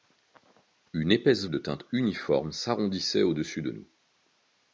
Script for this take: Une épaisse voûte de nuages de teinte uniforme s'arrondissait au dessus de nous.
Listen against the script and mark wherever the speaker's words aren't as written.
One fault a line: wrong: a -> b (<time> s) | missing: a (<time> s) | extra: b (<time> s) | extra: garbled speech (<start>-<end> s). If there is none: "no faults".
missing: voûte de nuages (1.4 s)